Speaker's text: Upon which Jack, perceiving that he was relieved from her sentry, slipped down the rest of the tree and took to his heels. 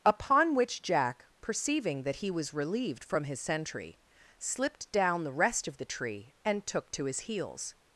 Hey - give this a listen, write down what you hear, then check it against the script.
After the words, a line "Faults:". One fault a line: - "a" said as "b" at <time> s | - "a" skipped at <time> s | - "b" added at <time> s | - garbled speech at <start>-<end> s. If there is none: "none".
Upon which Jack, perceiving that he was relieved from his sentry, slipped down the rest of the tree and took to his heels.
Faults:
- "her" said as "his" at 3.2 s